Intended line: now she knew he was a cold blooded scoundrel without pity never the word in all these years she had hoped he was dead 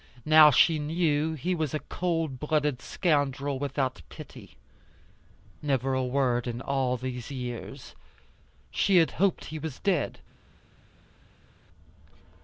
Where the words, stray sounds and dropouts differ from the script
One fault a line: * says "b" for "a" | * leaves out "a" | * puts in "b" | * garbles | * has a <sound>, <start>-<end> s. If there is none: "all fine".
* says "a" for "the"